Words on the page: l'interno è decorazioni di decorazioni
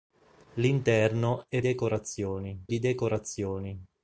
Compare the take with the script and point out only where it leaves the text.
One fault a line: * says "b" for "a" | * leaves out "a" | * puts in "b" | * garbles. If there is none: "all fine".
all fine